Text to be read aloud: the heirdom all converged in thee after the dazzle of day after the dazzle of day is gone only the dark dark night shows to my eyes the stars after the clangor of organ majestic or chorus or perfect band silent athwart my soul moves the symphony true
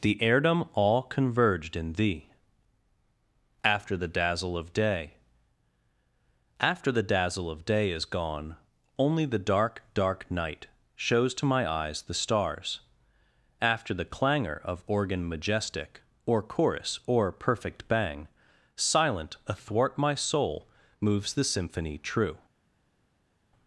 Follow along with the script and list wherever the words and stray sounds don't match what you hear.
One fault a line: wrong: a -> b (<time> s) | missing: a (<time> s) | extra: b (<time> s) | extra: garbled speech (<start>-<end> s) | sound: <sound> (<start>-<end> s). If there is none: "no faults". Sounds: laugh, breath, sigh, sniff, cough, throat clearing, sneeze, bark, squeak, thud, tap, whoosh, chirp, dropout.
wrong: band -> bang (17.9 s)